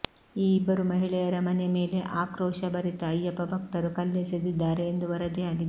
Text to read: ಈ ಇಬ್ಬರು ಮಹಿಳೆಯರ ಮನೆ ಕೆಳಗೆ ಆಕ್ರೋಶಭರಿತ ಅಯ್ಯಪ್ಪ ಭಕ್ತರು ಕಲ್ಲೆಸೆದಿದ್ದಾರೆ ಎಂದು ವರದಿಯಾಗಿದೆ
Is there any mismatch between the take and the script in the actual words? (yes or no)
yes